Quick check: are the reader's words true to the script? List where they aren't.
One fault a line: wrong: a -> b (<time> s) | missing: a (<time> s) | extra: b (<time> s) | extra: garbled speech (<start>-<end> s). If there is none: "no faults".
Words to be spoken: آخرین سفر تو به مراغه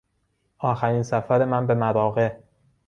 wrong: تو -> من (1.4 s)